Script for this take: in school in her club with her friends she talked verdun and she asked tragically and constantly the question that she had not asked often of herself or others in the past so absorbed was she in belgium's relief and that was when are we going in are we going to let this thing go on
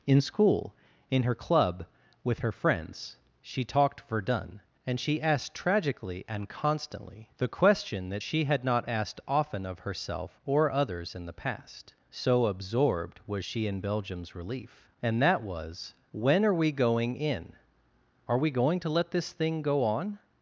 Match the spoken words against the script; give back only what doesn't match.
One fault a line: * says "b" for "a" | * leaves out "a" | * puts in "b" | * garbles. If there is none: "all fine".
all fine